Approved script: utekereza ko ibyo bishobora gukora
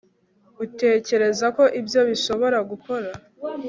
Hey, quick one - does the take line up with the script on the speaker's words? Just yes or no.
yes